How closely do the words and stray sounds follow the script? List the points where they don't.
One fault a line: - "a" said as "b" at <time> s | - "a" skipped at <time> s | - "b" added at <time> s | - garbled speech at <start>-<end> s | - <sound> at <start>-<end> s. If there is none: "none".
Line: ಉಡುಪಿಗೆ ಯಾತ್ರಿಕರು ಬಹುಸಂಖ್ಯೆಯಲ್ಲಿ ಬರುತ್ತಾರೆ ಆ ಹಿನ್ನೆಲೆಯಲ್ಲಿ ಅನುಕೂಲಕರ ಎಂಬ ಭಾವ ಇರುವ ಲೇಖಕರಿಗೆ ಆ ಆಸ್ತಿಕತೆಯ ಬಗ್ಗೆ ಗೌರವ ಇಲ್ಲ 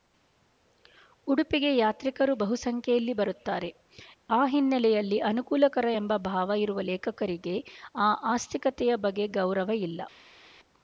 none